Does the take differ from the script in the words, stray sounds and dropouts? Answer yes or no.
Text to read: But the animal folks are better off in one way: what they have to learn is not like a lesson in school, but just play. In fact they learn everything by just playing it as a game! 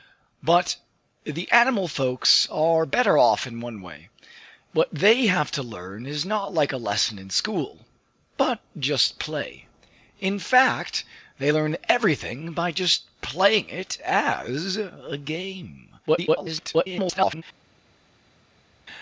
yes